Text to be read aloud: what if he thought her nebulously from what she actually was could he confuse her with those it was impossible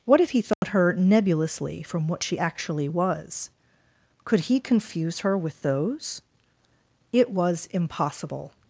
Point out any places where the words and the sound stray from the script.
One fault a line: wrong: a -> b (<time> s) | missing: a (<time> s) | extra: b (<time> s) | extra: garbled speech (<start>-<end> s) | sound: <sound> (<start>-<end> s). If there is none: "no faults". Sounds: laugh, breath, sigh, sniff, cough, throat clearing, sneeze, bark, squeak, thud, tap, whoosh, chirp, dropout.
sound: dropout (0.5-0.6 s)